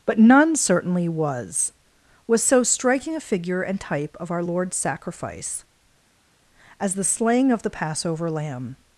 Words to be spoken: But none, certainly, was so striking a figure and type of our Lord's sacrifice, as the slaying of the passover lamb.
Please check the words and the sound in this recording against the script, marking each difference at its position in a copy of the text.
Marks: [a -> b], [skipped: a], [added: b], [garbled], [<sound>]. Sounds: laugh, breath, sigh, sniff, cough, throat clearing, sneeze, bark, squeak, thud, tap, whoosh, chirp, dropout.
But none, certainly, was [added: was] so striking a figure and type of our Lord's sacrifice, as the slaying of the passover lamb.